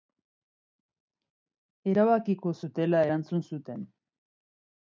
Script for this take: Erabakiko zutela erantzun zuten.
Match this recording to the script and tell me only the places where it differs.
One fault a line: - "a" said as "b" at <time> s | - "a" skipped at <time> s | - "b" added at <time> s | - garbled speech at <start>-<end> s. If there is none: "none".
none